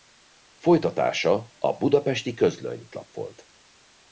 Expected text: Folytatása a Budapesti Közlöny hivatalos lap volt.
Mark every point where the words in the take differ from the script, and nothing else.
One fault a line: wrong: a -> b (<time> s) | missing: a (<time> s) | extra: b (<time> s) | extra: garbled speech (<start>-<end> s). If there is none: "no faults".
missing: hivatalos (2.9 s)